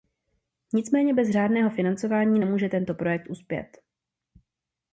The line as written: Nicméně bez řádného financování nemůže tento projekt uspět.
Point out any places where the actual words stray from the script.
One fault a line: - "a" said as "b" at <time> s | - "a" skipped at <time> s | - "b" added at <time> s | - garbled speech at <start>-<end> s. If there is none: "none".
none